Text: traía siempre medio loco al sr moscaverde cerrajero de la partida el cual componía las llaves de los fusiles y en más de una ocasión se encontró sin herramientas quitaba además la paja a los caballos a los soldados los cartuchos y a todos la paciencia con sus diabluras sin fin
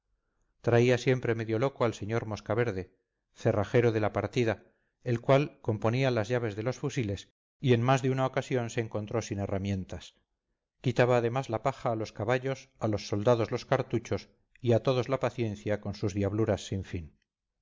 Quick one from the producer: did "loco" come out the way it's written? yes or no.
yes